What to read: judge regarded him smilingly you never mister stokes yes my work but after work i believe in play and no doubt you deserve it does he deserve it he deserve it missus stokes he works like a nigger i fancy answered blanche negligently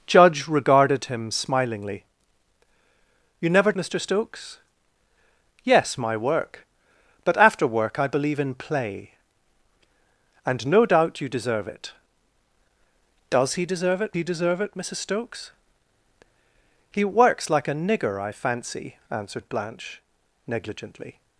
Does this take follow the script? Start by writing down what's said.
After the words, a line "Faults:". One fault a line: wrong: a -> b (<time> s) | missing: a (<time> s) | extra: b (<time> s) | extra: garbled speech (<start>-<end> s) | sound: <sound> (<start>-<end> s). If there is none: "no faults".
judge regarded him smilingly you never mister stokes yes my work but after work i believe in play and no doubt you deserve it does he deserve it he deserve it missus stokes he works like a nigger i fancy answered blanche negligently
Faults:
no faults